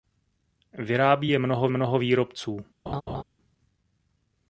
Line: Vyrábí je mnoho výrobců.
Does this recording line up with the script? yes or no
no